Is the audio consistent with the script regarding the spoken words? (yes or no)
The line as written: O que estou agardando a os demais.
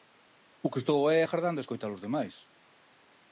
no